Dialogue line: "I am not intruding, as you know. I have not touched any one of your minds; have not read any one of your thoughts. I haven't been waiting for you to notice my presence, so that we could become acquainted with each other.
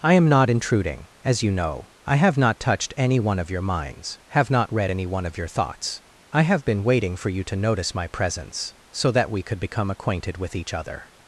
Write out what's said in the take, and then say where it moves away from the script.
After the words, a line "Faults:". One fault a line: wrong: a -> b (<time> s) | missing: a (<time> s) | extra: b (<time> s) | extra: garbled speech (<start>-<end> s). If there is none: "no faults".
"I am not intruding, as you know. I have not touched any one of your minds; have not read any one of your thoughts. I have been waiting for you to notice my presence, so that we could become acquainted with each other.
Faults:
wrong: haven't -> have (6.4 s)